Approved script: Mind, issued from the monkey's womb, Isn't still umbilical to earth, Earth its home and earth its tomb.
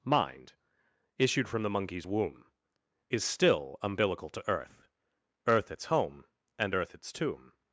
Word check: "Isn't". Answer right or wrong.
wrong